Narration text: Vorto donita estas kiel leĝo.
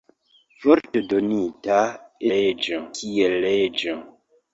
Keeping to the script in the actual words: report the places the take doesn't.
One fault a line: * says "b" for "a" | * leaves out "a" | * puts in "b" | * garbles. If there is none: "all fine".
* says "leĝo" for "estas"